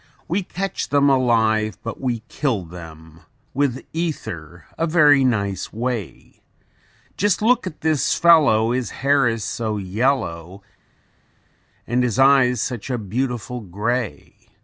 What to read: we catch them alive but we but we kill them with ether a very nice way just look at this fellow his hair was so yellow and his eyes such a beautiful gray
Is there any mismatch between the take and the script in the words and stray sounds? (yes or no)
yes